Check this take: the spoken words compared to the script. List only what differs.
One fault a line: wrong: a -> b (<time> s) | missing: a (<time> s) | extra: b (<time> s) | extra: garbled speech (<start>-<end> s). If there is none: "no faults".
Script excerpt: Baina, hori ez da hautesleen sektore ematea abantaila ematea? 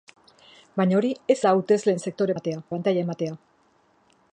no faults